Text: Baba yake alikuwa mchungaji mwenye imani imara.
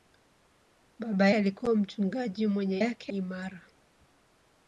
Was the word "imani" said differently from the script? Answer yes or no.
yes